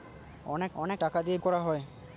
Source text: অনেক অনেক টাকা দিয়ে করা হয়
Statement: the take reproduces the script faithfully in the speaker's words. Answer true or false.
true